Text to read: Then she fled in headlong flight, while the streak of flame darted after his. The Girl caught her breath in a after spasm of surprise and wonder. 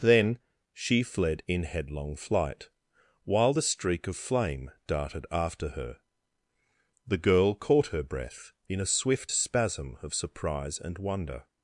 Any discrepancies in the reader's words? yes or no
yes